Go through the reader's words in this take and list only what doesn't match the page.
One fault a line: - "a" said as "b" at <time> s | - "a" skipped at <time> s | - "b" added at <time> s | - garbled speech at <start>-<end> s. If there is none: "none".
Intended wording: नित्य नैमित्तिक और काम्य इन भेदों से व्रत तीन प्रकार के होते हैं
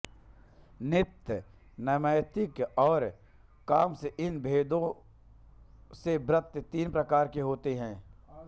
none